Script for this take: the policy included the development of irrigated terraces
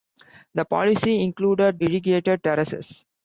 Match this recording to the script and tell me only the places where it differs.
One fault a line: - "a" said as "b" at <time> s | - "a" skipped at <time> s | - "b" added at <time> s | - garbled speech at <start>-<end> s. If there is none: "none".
- "the development of" skipped at 1.8 s